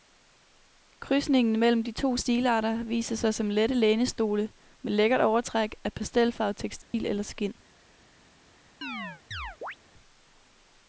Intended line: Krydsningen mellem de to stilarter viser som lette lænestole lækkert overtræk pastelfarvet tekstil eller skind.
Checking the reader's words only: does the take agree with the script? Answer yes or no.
no